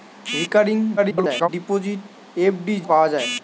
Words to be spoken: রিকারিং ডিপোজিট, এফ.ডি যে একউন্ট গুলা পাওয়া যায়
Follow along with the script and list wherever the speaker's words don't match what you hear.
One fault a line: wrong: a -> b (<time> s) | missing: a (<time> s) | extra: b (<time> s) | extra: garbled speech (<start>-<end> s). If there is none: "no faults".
extra: garbled speech (1.0-1.5 s)
missing: যে একউন্ট গুলা (2.8 s)